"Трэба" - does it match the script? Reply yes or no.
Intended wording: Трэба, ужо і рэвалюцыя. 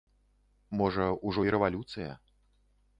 no